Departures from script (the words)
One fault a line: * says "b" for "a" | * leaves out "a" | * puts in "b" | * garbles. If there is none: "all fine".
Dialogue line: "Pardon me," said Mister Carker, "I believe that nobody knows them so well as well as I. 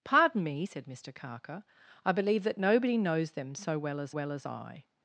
all fine